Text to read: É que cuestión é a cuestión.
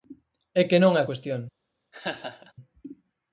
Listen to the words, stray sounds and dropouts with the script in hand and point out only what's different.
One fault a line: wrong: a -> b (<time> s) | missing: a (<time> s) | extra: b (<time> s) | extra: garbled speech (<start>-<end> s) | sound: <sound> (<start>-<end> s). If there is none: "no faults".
wrong: cuestión -> non (0.8 s)
sound: laugh (1.9-2.5 s)